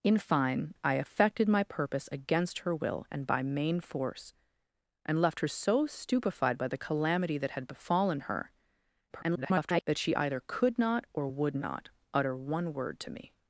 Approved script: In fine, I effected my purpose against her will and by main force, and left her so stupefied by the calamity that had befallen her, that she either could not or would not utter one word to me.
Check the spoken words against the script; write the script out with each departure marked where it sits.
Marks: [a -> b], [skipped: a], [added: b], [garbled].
In fine, I effected my purpose against her will and by main force, and left her so stupefied by the calamity that had befallen her, [garbled] that she either could not or would not utter one word to me.